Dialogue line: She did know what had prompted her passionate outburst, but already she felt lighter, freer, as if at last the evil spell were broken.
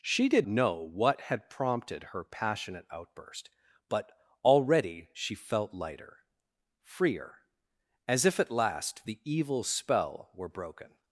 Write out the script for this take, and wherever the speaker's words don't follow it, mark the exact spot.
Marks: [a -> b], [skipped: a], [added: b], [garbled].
She did know what had prompted her passionate outburst, but already she felt lighter, freer, as if at last the evil spell were broken.